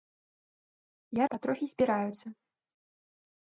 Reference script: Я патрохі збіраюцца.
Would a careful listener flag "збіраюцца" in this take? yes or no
no